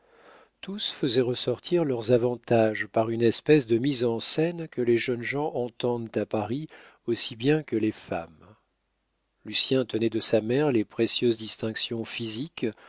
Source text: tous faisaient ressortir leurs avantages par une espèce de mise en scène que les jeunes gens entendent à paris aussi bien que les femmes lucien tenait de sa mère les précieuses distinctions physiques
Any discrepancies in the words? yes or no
no